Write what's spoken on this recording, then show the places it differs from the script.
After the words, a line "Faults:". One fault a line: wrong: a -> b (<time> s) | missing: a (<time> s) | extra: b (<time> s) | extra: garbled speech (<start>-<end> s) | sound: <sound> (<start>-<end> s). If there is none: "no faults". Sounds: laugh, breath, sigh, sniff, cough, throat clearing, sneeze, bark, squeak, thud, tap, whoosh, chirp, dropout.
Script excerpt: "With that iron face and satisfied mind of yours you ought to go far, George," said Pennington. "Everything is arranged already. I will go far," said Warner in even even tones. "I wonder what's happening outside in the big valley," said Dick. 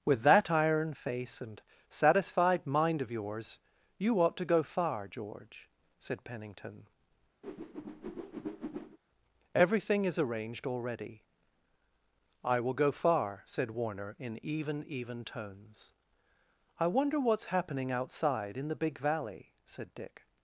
"With that iron face and satisfied mind of yours you ought to go far, George," said Pennington. "Everything is arranged already. I will go far," said Warner in even even tones. "I wonder what's happening outside in the big valley," said Dick.
Faults:
sound: whoosh (7.4-9.0 s)